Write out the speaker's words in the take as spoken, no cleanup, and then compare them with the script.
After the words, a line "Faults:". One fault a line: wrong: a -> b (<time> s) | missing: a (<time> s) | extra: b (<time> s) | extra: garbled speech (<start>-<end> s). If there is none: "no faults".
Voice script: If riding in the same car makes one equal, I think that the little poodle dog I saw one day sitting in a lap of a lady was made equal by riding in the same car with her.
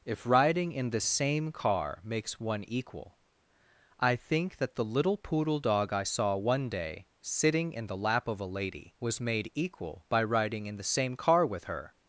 If riding in the same car makes one equal, I think that the little poodle dog I saw one day sitting in the lap of a lady was made equal by riding in the same car with her.
Faults:
wrong: a -> the (7.8 s)